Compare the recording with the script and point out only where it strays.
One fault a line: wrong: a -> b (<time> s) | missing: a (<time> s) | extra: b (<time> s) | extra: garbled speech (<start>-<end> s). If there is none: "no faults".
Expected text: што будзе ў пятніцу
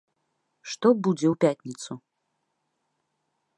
no faults